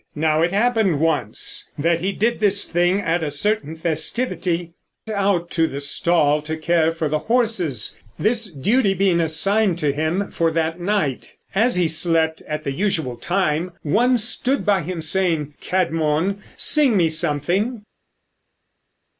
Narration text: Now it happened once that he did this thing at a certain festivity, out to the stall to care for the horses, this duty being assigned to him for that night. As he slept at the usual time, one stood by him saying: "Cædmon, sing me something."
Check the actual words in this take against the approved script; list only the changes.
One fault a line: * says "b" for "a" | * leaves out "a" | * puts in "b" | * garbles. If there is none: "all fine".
all fine